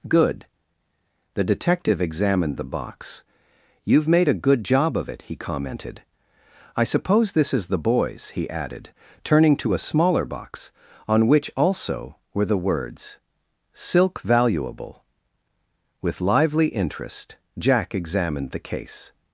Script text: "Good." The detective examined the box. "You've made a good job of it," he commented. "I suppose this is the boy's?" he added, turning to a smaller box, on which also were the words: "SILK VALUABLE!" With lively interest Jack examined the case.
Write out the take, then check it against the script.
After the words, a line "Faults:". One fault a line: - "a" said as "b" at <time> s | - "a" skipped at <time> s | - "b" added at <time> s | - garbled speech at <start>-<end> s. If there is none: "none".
"Good." The detective examined the box. "You've made a good job of it," he commented. "I suppose this is the boy's?" he added, turning to a smaller box, on which also were the words: "SILK VALUABLE!" With lively interest Jack examined the case.
Faults:
none